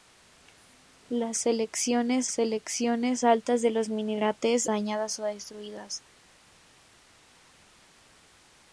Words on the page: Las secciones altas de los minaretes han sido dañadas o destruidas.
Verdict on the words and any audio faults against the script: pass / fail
fail